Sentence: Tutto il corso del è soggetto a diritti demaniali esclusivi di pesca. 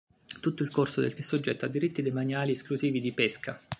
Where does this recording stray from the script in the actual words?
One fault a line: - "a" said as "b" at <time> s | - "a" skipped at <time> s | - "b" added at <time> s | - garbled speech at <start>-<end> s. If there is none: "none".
none